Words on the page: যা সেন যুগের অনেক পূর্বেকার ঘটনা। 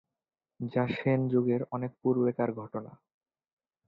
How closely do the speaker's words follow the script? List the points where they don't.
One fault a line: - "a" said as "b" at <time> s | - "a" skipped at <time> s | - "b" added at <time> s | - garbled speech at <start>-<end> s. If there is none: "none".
none